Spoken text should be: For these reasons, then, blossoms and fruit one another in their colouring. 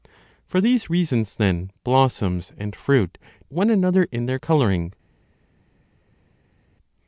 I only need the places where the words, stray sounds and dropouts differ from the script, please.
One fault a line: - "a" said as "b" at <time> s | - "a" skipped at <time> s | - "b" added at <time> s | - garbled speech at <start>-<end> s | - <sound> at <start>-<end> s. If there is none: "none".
none